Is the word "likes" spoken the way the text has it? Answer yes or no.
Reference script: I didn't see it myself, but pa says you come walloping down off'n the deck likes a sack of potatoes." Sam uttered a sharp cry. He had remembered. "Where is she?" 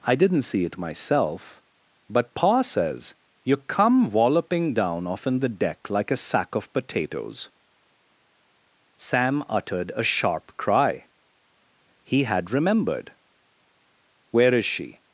no